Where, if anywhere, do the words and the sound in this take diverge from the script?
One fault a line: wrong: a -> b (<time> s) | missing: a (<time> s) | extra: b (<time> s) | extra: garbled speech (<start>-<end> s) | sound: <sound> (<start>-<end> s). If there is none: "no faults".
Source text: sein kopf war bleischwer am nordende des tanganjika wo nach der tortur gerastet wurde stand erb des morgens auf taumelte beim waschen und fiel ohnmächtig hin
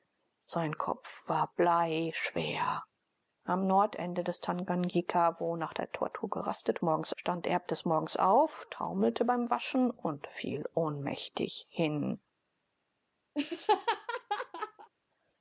wrong: wurde -> morgens (6.8 s)
sound: laugh (13.3-14.9 s)